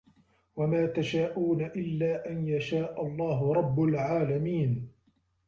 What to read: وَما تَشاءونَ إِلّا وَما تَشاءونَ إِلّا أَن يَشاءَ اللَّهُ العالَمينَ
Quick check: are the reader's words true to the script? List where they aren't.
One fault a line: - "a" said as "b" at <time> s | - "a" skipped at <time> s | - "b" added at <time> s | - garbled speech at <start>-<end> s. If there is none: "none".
- "وَما تَشاءونَ إِلّا" skipped at 2.3 s
- "رَبُّ" added at 3.5 s